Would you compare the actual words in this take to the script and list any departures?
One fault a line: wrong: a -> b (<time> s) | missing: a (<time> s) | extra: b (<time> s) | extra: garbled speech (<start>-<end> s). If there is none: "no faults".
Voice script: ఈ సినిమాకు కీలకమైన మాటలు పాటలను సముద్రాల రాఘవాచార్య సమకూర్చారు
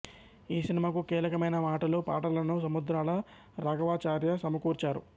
no faults